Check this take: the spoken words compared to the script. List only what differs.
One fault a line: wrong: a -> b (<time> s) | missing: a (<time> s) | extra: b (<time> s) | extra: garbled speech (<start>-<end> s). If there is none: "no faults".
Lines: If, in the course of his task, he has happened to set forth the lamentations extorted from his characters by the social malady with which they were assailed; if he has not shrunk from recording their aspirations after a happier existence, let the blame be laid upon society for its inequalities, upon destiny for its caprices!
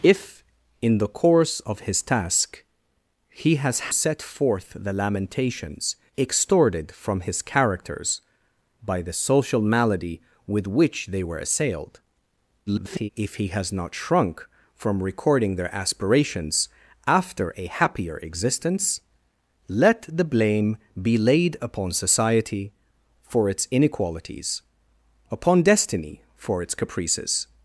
missing: happened to (3.9 s)
extra: garbled speech (12.7-13.1 s)